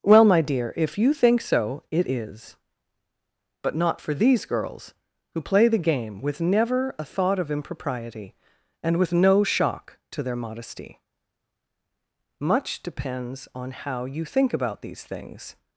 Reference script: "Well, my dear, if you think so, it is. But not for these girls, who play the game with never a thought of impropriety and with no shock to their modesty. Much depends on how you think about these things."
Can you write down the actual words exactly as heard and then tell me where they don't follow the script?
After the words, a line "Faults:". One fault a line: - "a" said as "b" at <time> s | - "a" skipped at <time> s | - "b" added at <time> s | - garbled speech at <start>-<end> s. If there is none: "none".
"Well, my dear, if you think so, it is. But not for these girls, who play the game with never a thought of impropriety and with no shock to their modesty. Much depends on how you think about these things."
Faults:
none